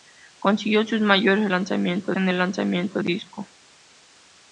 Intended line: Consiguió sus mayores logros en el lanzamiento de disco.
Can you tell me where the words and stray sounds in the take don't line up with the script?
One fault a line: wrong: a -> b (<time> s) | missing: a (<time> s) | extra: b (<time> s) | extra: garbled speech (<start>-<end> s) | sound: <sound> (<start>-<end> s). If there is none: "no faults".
wrong: logros -> lanzamiento (1.5 s)
missing: de (3.0 s)